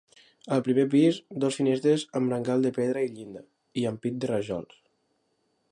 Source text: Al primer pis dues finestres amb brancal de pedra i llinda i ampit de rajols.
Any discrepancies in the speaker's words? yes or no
no